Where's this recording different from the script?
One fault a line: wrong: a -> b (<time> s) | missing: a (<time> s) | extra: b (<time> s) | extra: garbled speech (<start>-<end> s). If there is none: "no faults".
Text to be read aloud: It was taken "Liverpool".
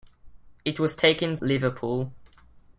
no faults